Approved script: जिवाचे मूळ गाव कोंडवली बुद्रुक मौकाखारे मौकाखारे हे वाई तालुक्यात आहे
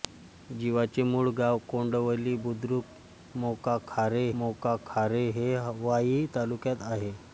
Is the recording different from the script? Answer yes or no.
no